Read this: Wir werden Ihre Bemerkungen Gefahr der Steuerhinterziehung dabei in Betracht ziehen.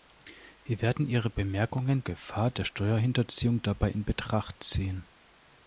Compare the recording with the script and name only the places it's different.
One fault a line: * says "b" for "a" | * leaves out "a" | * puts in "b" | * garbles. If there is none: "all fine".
all fine